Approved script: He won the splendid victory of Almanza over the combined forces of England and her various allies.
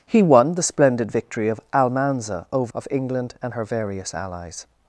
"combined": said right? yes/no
no